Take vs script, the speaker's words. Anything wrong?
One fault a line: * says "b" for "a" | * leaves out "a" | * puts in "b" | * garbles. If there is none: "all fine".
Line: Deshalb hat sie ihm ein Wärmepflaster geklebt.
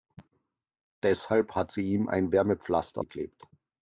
all fine